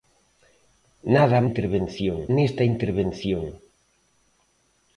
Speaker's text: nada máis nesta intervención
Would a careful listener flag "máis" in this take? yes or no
yes